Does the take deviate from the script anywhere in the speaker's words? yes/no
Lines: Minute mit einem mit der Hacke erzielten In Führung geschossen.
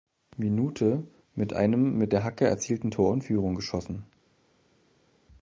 yes